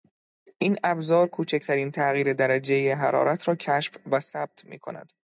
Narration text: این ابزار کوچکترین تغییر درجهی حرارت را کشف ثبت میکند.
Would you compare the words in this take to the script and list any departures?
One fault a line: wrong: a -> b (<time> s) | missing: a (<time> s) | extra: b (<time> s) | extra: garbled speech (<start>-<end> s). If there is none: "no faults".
extra: و (4.1 s)